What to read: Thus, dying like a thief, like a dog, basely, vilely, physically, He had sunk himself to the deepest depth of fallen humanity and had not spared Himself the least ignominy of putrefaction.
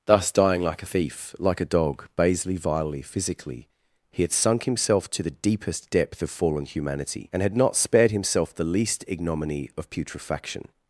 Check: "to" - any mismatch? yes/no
no